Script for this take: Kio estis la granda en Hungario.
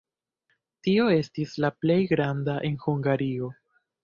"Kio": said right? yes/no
no